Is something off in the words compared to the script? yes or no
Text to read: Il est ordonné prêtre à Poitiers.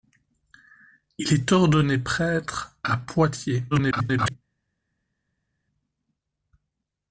yes